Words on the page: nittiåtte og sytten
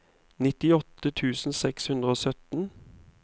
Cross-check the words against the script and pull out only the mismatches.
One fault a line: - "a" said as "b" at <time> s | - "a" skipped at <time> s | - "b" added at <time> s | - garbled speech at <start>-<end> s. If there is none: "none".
- "tusen seks hundre" added at 1.2 s